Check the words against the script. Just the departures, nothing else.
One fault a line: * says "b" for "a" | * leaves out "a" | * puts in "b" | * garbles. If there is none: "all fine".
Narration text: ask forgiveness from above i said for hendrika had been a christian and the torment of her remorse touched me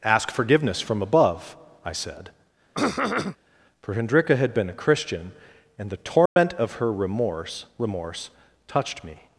* puts in "remorse"